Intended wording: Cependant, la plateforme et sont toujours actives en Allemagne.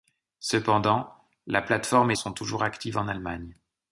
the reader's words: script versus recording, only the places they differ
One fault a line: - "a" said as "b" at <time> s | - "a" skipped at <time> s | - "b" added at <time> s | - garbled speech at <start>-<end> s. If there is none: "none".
none